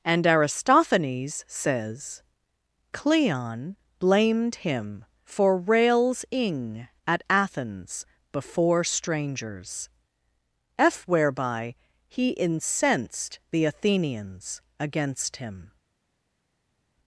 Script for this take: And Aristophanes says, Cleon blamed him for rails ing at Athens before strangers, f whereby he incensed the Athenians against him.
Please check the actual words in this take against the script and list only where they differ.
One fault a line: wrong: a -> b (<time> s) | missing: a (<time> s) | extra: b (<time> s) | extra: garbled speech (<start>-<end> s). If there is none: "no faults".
no faults